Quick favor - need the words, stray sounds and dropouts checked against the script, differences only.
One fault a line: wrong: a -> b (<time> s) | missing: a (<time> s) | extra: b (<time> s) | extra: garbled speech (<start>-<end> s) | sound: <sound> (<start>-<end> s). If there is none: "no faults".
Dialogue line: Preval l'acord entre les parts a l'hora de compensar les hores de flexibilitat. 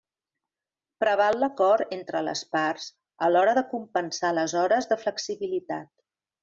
no faults